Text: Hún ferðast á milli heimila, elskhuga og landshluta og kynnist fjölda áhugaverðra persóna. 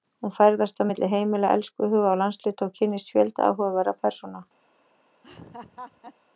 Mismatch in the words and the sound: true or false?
true